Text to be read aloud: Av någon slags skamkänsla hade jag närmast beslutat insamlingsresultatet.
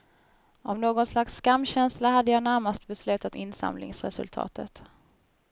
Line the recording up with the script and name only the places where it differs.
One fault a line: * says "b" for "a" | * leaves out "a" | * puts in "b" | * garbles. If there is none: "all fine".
all fine